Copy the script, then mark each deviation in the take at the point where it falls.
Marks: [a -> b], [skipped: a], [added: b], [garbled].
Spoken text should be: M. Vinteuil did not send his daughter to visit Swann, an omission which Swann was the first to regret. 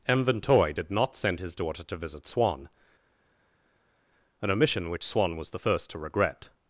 M. Vinteuil did not send his daughter to visit Swann, an omission which Swann was the first to regret.